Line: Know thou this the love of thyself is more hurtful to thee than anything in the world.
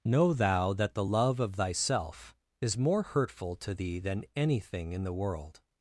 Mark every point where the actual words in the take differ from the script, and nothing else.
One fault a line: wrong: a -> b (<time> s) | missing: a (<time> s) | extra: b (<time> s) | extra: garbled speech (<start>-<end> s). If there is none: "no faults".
wrong: this -> that (0.7 s)